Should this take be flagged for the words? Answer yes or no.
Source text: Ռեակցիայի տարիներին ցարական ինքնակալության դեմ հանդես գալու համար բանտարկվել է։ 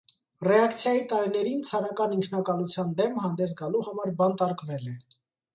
no